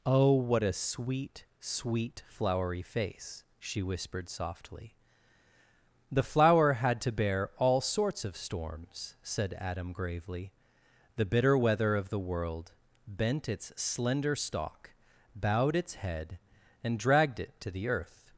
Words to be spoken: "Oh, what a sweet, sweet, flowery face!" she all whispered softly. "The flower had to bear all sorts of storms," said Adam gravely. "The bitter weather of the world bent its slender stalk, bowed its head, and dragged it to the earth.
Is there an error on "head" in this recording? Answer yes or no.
no